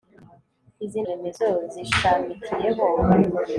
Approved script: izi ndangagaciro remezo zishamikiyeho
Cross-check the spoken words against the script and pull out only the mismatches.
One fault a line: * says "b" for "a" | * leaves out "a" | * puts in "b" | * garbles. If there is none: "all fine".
* leaves out "ndangagaciro"